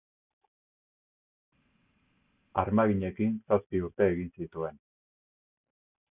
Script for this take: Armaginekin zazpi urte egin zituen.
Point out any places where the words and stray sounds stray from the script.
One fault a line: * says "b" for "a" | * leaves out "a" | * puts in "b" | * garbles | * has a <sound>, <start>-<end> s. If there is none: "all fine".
all fine